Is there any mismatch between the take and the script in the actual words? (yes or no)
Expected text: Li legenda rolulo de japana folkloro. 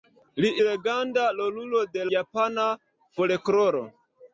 no